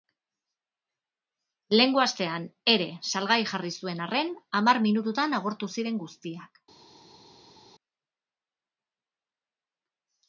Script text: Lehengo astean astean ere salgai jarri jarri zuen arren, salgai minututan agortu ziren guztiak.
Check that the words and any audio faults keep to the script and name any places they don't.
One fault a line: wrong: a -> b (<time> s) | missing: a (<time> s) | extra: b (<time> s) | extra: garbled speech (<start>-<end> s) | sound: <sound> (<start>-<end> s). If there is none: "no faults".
missing: astean (2.5 s)
missing: jarri (3.7 s)
wrong: salgai -> hamar (4.6 s)